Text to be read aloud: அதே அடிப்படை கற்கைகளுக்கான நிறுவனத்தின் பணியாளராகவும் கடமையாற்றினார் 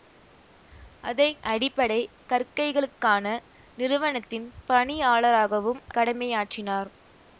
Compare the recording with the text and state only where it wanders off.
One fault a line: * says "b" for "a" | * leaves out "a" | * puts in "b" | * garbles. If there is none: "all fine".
all fine